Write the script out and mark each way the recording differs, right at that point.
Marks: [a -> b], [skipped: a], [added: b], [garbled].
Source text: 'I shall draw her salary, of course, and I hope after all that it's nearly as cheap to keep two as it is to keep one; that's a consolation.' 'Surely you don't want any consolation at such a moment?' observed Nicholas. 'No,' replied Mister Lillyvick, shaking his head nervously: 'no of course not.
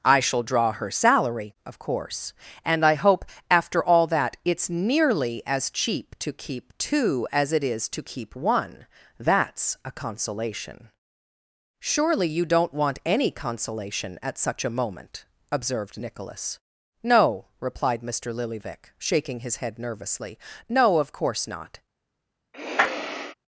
'I shall draw her salary, of course, and I hope after all that it's nearly as cheap to keep two as it is to keep one; that's a consolation.' 'Surely you don't want any consolation at such a moment?' observed Nicholas. 'No,' replied Mister Lillyvick, shaking his head nervously: 'no of course not.